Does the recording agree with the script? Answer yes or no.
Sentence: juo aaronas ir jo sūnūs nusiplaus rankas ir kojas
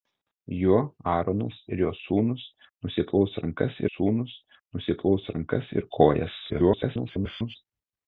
no